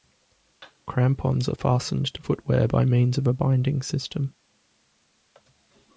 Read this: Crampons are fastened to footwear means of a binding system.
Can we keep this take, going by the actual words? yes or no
no